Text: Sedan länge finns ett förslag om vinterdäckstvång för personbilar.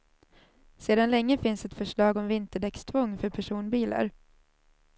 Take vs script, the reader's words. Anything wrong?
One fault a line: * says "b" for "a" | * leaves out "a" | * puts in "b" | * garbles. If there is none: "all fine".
all fine